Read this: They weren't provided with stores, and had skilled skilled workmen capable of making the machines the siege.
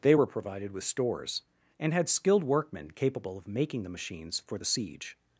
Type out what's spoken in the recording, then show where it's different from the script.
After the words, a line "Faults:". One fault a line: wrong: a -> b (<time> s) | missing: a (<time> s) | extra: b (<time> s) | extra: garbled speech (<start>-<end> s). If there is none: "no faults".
They were provided with stores, and had skilled workmen capable of making the machines for the siege.
Faults:
wrong: weren't -> were (0.1 s)
missing: skilled (2.4 s)
extra: for (4.4 s)